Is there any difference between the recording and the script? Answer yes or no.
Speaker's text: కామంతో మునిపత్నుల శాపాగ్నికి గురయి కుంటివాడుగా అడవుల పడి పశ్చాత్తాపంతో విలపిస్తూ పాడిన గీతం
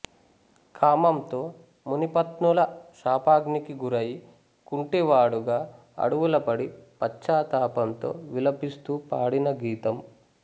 no